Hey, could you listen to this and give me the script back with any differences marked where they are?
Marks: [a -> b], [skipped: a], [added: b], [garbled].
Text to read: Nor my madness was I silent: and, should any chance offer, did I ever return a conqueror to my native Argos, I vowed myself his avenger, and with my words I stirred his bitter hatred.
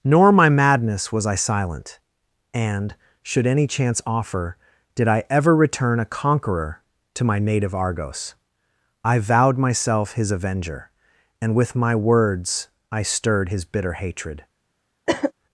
Nor my madness was I silent: and, should any chance offer, did I ever return a conqueror to my native Argos, I vowed myself his avenger, and with my words I stirred his bitter hatred.